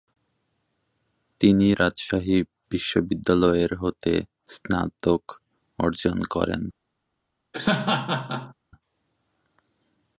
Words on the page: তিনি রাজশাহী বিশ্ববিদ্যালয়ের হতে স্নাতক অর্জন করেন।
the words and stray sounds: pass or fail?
fail